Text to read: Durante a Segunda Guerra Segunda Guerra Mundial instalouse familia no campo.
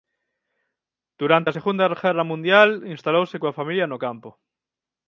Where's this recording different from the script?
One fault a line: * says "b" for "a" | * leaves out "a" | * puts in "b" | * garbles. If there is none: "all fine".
* leaves out "Segunda Guerra"
* puts in "coa"